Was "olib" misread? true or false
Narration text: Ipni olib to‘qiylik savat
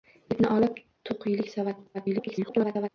false